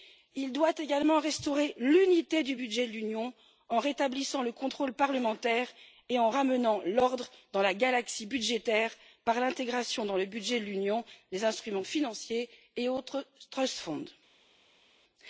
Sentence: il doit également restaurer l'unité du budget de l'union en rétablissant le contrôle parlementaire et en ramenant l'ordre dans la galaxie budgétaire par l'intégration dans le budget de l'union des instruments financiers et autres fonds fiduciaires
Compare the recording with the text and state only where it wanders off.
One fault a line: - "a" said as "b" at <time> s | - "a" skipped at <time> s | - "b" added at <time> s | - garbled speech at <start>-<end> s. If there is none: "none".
none